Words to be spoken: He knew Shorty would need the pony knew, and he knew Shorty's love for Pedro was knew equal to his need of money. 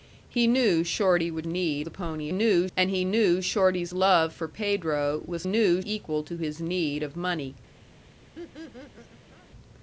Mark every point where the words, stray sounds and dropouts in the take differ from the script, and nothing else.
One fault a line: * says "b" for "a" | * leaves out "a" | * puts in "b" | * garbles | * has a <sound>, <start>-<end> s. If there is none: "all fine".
* has a laugh, 8.3-9.5 s